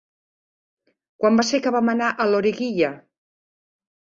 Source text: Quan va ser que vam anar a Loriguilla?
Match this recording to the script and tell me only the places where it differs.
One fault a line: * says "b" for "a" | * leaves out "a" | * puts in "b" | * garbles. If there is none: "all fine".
all fine